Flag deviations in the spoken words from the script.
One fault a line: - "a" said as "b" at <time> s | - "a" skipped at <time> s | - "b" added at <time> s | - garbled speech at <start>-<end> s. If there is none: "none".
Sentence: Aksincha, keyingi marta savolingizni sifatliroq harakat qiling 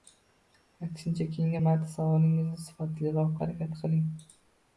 none